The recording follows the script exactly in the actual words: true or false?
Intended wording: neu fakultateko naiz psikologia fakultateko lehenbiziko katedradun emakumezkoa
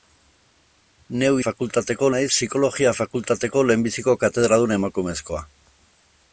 true